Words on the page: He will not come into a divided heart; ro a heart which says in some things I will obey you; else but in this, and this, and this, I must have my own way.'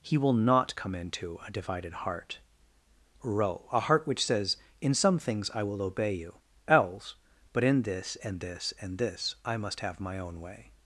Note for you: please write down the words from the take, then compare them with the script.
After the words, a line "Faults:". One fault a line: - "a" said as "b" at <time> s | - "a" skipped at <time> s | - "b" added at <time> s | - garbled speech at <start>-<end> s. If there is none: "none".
He will not come into a divided heart; ro a heart which says in some things I will obey you; else but in this, and this, and this, I must have my own way.'
Faults:
none